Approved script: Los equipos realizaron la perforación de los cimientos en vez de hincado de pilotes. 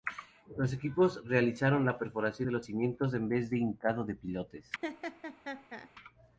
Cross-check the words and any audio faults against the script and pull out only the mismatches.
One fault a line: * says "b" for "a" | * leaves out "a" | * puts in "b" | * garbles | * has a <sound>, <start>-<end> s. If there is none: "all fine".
* has a laugh, 4.8-5.9 s